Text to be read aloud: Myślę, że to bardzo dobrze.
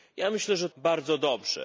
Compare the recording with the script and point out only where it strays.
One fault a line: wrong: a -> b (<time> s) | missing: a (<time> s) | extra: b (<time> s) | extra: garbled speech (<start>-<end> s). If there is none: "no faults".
missing: to (0.7 s)